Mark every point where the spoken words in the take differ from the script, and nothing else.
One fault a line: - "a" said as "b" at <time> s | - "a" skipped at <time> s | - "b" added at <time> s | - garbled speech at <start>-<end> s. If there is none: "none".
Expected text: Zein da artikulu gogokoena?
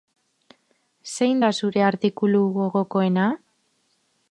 - "zure" added at 1.6 s